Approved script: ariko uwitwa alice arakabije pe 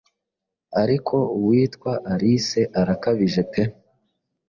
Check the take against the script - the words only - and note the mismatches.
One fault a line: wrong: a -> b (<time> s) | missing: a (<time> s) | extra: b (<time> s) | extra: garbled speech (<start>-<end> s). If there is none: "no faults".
no faults